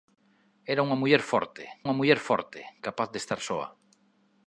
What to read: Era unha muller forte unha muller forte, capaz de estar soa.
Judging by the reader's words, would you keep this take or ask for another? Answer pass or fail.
pass